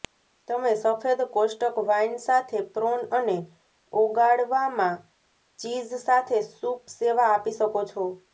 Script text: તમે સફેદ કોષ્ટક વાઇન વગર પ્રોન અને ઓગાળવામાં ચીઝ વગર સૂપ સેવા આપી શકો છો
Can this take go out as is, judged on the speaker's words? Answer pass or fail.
fail